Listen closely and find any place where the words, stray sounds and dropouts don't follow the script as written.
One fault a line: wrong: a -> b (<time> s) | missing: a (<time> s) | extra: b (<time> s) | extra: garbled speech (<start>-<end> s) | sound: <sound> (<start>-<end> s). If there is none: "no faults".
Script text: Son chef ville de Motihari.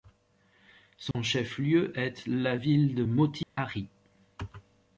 sound: dropout (1.1-1.1 s)
extra: lieu est la (1.6 s)
sound: dropout (3.4-3.6 s)